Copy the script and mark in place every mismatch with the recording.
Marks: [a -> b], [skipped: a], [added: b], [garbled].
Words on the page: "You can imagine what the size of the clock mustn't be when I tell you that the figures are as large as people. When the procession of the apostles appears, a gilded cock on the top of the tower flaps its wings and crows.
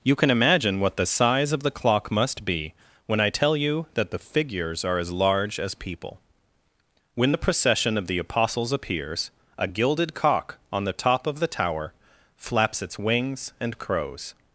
"You can imagine what the size of the clock [mustn't -> must] be when I tell you that the figures are as large as people. When the procession of the apostles appears, a gilded cock on the top of the tower flaps its wings and crows.